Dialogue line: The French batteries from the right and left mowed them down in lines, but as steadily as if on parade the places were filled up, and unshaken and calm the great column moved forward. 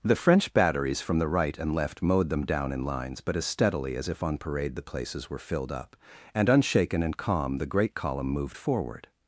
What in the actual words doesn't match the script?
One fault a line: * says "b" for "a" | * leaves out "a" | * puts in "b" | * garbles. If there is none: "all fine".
all fine